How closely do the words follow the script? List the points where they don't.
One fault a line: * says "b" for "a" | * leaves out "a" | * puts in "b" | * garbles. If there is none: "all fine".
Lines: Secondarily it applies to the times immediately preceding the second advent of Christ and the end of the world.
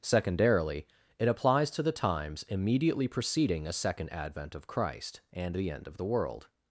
* says "a" for "the"